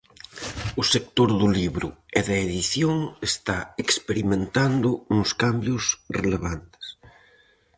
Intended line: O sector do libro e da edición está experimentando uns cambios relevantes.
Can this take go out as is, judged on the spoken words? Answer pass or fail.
pass